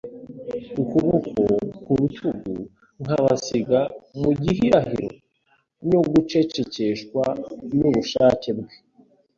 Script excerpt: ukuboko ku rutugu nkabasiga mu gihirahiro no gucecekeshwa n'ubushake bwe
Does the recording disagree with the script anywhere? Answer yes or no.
no